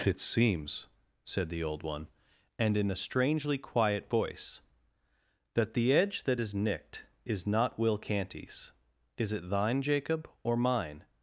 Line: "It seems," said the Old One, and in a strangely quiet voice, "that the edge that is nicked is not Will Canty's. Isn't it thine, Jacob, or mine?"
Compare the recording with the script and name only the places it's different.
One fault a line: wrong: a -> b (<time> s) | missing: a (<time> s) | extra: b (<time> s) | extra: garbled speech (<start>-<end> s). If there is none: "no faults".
wrong: Isn't -> Is (9.2 s)